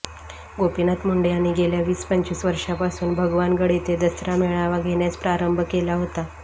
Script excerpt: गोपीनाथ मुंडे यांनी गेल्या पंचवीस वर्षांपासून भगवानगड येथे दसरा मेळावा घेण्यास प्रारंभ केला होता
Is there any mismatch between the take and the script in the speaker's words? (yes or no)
yes